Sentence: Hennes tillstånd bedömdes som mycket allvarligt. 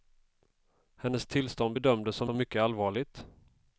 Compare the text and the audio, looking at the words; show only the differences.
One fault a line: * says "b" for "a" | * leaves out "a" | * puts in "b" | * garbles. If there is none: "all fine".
* puts in "som"